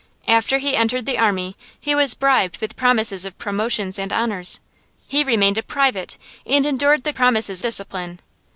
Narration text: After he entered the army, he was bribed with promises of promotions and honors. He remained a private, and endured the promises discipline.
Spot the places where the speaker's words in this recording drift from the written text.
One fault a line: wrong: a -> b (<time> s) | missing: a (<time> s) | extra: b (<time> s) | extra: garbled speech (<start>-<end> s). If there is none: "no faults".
no faults